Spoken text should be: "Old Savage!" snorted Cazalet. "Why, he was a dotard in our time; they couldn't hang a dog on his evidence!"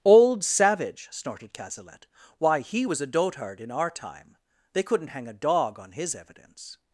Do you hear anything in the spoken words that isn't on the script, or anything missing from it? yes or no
no